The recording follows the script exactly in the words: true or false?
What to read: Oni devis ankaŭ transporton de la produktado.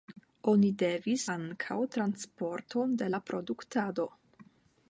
true